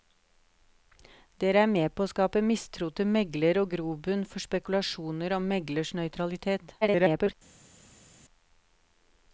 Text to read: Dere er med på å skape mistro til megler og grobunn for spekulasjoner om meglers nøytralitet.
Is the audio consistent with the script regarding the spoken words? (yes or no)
no